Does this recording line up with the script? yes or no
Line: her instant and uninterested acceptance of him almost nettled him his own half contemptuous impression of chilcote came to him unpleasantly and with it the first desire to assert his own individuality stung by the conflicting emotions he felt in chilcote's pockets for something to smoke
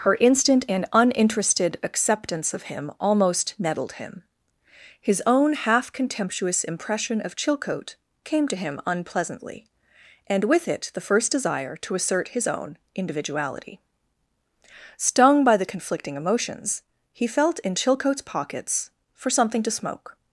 yes